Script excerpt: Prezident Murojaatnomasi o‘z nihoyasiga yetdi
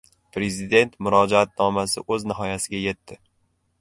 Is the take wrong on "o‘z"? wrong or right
right